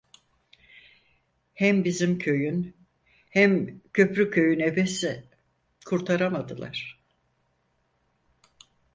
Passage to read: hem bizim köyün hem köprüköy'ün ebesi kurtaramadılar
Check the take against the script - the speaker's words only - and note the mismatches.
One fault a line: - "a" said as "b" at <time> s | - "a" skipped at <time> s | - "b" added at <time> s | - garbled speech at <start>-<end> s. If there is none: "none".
none